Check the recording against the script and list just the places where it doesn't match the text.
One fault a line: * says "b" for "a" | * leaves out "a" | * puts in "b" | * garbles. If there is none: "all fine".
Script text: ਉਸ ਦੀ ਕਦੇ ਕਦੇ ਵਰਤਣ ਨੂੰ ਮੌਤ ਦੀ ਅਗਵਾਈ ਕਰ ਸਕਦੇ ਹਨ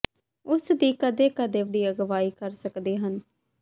* leaves out "ਵਰਤਣ ਨੂੰ ਮੌਤ"